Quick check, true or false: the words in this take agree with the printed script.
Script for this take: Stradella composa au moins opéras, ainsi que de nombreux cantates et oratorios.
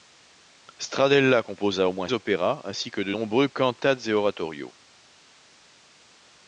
true